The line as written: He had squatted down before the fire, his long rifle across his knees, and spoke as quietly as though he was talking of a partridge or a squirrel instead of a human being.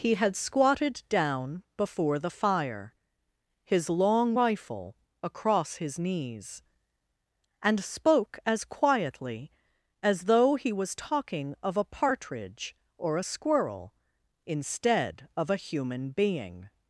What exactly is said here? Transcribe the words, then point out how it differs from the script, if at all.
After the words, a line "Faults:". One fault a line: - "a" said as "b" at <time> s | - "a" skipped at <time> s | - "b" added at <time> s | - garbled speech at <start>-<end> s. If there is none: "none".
He had squatted down before the fire, his long rifle across his knees, and spoke as quietly as though he was talking of a partridge or a squirrel instead of a human being.
Faults:
none